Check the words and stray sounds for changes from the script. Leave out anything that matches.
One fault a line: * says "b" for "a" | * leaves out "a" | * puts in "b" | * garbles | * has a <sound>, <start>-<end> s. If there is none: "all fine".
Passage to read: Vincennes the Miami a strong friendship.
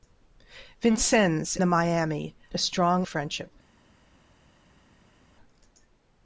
all fine